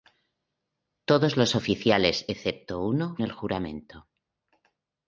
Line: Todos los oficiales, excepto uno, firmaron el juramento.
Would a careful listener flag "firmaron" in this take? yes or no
yes